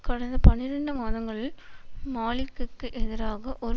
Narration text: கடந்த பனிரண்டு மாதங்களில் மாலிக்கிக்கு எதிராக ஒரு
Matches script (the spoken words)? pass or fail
pass